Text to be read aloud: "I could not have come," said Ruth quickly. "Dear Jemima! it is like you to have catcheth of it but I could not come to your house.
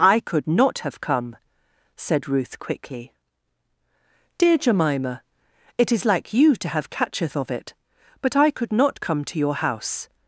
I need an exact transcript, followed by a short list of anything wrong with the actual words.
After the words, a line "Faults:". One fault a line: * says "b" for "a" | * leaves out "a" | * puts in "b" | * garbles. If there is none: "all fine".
"I could not have come," said Ruth quickly. "Dear Jemima! it is like you to have catcheth of it but I could not come to your house.
Faults:
all fine